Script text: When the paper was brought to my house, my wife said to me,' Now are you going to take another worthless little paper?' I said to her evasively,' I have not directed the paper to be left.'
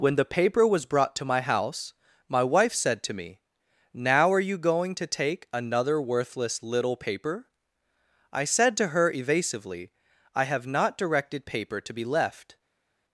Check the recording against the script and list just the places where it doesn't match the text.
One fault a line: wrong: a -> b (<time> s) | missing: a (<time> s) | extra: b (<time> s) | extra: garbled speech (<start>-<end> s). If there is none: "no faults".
missing: the (11.4 s)